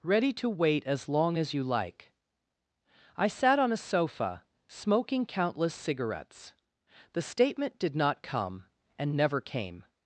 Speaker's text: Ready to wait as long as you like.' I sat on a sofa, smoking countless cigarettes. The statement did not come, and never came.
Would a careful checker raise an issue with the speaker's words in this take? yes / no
no